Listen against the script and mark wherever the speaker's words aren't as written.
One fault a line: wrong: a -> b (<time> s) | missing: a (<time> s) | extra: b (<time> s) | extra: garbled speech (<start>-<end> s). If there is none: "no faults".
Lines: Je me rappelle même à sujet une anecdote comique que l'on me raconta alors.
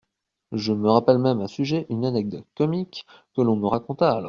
no faults